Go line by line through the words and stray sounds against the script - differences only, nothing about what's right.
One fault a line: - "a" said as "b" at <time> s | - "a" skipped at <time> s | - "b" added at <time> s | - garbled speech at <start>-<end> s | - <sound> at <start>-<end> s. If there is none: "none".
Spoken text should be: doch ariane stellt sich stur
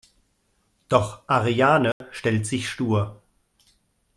- dropout at 1.9-2.0 s